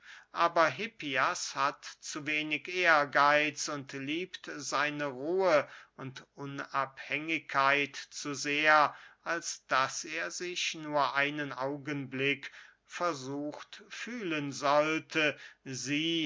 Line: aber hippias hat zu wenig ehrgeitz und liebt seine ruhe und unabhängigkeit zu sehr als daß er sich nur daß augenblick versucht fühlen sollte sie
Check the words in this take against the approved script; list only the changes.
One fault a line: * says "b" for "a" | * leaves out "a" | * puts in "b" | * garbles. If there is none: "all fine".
* says "einen" for "daß"